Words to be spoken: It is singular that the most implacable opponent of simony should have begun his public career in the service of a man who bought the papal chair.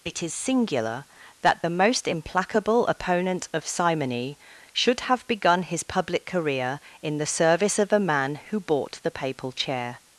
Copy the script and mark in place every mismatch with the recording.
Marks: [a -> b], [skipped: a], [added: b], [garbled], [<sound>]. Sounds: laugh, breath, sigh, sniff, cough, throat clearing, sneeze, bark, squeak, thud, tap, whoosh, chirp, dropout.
It is singular that the most implacable opponent of simony should have begun his public career in the service of a man who bought the papal chair.